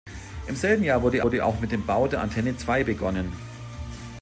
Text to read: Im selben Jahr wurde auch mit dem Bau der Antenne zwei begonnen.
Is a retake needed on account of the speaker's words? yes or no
yes